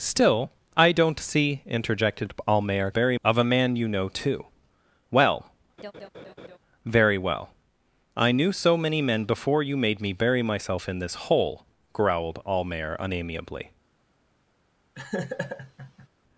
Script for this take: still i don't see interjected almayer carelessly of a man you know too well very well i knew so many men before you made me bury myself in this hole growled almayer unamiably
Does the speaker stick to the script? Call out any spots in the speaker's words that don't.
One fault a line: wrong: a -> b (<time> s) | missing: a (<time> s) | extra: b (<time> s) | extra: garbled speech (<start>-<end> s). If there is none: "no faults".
wrong: carelessly -> bury (2.9 s)